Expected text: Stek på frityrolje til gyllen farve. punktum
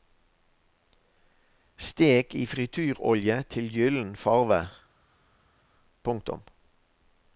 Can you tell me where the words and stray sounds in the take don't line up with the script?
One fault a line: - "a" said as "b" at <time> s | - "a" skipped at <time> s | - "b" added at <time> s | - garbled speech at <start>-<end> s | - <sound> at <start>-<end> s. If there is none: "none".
- "på" said as "i" at 2.4 s